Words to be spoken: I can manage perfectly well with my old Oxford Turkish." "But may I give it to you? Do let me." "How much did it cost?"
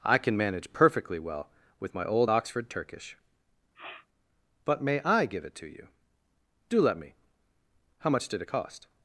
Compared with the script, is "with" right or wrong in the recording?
right